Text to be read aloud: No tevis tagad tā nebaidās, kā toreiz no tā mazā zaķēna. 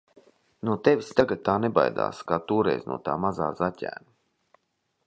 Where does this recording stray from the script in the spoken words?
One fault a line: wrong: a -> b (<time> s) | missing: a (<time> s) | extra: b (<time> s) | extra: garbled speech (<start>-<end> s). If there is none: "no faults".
no faults